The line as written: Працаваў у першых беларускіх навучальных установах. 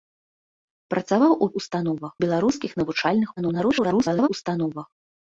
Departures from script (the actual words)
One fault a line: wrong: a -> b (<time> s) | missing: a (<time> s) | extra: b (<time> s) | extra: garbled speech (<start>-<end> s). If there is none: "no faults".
wrong: першых -> установах (1.6 s)
extra: garbled speech (3.4-4.3 s)